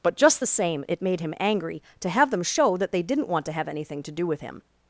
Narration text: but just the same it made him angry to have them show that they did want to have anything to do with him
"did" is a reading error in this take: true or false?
true